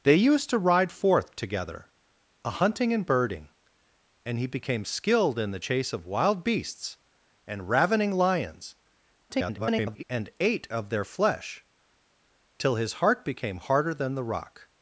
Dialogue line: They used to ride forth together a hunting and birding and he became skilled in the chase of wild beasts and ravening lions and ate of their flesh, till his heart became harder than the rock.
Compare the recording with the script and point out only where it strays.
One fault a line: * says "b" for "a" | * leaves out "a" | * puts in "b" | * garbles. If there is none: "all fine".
* garbles